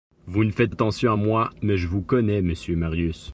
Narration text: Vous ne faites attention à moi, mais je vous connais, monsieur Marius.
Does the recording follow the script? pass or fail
pass